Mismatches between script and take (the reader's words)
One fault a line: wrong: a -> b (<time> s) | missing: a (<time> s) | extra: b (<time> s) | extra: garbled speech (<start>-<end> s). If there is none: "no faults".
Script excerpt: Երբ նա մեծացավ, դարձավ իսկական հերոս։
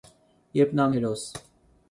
missing: մեծացավ դարձավ իսկական (0.9 s)